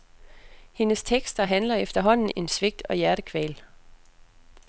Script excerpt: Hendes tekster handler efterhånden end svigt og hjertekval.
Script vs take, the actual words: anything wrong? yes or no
no